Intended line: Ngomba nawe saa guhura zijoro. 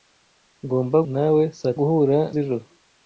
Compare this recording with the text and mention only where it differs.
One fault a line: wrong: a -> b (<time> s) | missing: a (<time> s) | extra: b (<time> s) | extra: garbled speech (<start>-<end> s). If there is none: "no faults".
no faults